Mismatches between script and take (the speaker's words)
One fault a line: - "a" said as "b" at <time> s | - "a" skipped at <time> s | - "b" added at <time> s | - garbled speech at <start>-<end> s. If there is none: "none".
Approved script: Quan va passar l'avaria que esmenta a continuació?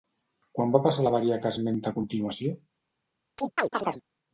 none